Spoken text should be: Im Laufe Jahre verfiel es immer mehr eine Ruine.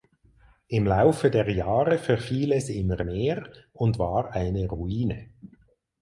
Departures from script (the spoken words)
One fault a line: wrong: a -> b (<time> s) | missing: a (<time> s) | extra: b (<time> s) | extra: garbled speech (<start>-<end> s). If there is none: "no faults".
extra: der (1.3 s)
extra: und war (3.7 s)